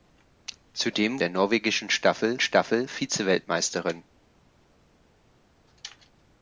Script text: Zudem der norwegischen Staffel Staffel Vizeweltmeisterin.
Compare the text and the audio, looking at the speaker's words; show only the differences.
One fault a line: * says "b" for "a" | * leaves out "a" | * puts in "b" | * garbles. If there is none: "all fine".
all fine